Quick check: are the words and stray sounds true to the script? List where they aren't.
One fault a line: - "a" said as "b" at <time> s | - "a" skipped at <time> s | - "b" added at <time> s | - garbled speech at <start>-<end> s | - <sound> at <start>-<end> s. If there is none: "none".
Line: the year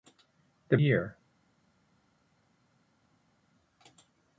none